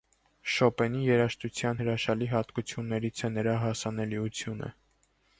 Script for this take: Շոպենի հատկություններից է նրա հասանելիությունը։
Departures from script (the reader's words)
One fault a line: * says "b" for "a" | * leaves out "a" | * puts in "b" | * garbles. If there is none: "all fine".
* puts in "երաժշտության հրաշալի"